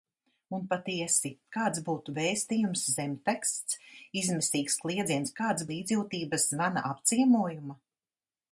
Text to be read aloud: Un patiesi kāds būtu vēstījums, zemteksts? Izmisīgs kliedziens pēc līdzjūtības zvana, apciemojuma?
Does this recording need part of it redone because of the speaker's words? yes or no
yes